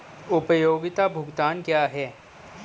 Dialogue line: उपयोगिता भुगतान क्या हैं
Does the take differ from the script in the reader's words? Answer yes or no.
no